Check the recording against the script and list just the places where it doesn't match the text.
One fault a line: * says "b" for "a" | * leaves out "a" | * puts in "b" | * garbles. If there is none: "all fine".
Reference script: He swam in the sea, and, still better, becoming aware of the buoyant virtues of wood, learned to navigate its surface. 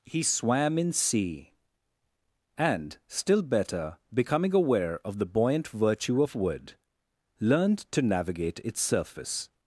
* leaves out "the"
* says "virtue" for "virtues"